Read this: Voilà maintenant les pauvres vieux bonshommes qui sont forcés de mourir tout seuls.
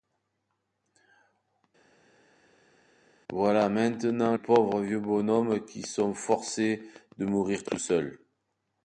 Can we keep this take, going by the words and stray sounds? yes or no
no